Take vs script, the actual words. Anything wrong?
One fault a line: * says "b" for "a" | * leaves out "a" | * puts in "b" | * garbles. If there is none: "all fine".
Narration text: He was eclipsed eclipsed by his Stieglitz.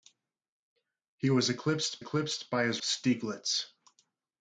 all fine